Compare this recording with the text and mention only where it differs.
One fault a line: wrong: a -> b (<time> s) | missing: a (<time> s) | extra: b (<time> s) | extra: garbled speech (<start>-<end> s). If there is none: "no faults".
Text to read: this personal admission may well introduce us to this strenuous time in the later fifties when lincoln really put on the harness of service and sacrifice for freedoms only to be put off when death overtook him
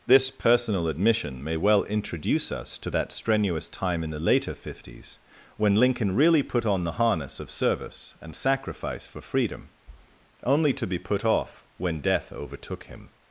wrong: this -> that (2.9 s)
wrong: freedoms -> freedom (9.2 s)